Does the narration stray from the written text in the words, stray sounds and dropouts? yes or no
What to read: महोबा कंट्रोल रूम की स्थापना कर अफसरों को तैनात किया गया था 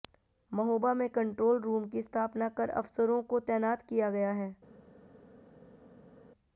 yes